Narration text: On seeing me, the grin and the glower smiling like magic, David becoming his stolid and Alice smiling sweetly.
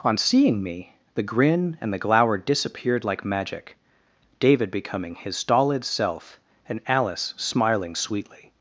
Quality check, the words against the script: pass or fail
fail